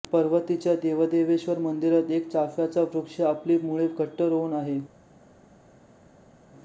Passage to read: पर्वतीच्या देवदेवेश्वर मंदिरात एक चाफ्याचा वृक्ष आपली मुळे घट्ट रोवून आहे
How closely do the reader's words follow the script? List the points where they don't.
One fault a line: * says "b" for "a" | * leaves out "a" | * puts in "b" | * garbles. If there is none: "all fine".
all fine